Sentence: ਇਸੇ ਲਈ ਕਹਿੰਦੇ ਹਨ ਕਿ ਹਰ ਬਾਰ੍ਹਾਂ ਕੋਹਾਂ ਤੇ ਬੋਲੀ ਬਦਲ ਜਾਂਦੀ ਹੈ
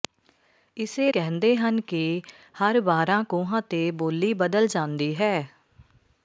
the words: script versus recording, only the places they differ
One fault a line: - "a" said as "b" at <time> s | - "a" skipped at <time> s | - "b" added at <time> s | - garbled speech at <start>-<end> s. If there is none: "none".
- "ਲਈ" skipped at 1.1 s